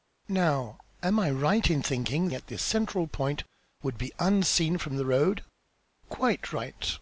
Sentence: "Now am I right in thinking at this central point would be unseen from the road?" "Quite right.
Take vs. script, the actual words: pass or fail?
pass